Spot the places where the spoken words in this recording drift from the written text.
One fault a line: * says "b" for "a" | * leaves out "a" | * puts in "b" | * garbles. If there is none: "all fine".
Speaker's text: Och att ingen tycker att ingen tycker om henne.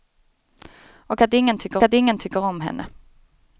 all fine